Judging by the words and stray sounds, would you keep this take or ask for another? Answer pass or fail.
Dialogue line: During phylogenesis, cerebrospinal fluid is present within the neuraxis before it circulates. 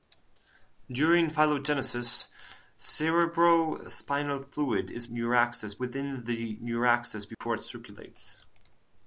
fail